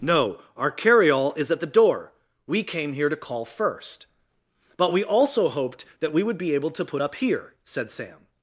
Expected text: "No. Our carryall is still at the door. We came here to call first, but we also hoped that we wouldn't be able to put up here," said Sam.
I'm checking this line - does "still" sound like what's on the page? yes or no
no